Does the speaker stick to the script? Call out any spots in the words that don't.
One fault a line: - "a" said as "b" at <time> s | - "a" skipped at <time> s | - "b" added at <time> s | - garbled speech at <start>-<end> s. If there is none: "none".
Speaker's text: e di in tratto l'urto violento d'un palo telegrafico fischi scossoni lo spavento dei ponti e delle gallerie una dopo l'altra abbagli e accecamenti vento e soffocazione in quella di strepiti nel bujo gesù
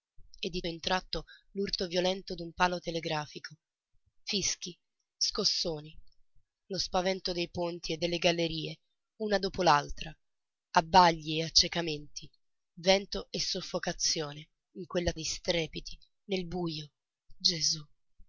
none